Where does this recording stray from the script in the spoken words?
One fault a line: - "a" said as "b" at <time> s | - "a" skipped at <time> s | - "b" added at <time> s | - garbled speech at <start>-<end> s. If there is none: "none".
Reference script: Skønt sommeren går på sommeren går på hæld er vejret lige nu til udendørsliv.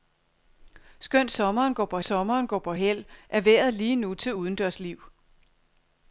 none